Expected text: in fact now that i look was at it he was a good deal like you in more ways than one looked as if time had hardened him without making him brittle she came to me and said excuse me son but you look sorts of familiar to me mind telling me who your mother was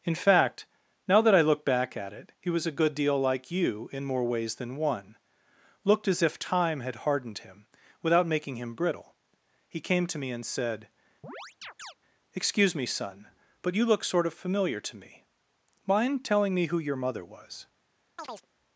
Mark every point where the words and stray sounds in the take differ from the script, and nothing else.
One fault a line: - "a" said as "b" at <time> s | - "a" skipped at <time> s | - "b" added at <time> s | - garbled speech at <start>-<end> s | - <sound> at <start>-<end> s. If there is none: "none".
- "was" said as "back" at 1.6 s
- "she" said as "he" at 9.7 s
- chirp at 11.2-11.9 s
- "sorts" said as "sort" at 14.0 s
- chirp at 18.2-18.5 s